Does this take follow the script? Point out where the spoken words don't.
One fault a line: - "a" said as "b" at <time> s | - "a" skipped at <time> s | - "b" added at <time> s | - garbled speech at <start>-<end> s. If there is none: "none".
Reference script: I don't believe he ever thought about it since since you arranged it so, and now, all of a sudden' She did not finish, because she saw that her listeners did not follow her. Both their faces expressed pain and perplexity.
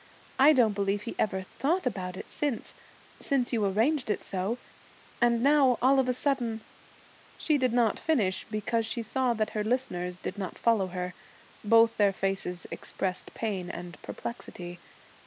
none